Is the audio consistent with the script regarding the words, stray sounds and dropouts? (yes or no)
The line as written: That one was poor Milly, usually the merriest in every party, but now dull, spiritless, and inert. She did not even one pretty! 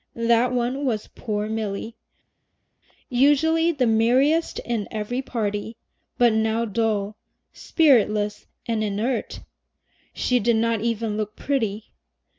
no